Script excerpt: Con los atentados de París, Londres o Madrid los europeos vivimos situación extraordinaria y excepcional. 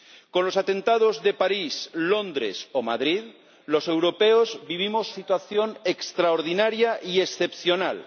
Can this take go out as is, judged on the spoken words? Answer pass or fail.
pass